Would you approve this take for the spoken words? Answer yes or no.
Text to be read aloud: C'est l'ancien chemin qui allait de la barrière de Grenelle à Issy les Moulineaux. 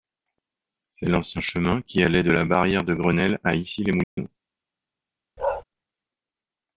yes